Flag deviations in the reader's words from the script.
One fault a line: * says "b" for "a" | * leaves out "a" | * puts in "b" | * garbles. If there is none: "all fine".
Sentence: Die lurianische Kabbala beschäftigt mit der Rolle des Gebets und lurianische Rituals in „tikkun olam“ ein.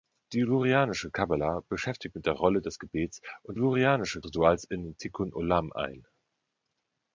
all fine